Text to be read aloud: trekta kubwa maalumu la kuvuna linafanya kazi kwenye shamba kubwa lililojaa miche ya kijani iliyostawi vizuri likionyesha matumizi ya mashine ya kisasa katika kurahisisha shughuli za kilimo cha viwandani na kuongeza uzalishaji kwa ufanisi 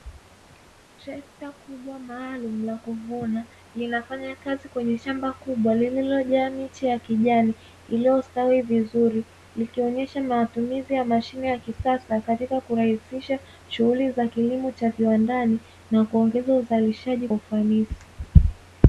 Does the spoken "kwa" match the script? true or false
false